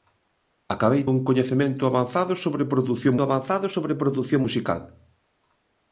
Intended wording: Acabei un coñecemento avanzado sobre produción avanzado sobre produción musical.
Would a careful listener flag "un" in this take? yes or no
no